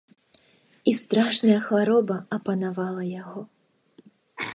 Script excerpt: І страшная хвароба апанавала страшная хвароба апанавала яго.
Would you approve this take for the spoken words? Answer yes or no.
no